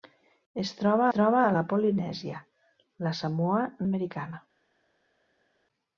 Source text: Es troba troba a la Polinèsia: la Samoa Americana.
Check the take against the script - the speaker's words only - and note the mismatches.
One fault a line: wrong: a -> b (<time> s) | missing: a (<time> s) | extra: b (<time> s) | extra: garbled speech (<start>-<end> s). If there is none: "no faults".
no faults